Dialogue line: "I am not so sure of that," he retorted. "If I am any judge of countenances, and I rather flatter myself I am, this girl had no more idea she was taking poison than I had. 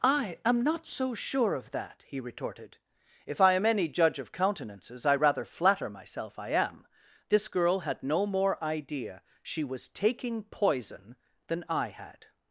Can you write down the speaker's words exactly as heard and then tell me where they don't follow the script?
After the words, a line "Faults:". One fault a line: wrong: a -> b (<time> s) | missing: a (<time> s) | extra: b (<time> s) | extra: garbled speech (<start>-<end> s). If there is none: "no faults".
"I am not so sure of that," he retorted. "If I am any judge of countenances, I rather flatter myself I am, this girl had no more idea she was taking poison than I had.
Faults:
missing: and (5.0 s)